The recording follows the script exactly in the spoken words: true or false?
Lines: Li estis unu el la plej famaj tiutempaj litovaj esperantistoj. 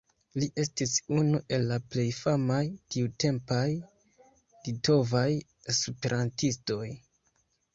true